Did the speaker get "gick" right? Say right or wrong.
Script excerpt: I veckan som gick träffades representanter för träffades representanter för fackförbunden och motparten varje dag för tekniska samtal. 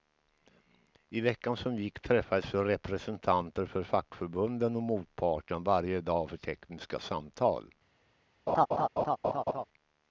right